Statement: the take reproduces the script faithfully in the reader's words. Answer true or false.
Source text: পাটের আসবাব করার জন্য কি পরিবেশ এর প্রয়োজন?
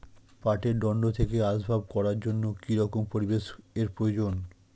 false